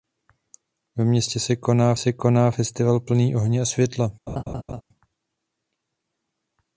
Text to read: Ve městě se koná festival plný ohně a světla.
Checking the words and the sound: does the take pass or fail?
fail